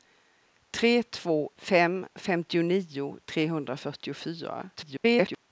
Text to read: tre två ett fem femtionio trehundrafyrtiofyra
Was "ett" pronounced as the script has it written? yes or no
no